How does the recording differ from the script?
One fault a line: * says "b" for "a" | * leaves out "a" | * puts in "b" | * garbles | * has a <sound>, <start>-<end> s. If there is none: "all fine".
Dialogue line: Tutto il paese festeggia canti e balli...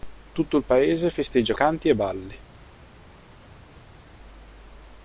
all fine